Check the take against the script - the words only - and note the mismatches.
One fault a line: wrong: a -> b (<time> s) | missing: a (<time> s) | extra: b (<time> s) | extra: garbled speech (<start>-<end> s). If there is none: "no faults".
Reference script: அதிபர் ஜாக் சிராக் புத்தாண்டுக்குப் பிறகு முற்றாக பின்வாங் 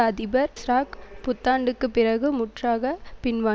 missing: ஜாக் (0.5 s)